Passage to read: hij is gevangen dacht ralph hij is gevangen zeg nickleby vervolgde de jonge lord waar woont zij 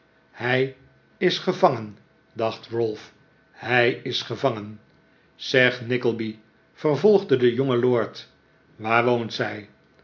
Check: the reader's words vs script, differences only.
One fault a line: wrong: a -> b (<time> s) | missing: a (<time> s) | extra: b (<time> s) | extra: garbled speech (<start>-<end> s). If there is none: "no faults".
no faults